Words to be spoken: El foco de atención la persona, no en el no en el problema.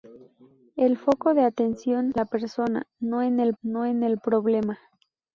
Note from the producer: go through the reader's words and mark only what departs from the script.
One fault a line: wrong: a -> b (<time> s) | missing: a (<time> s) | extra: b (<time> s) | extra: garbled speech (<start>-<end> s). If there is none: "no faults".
no faults